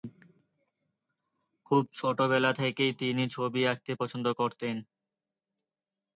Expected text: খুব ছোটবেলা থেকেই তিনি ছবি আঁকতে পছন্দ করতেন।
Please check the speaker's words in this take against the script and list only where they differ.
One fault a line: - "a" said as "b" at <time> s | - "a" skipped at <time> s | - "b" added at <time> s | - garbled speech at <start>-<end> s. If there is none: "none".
none